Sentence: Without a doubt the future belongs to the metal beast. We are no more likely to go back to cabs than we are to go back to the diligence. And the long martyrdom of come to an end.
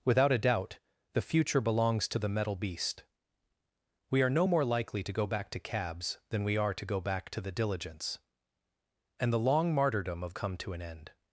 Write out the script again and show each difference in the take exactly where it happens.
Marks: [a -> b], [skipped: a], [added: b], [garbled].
Without a doubt the future belongs to the metal beast. We are no more likely to go back to cabs than we are to go back to the diligence. And the long martyrdom of come to an end.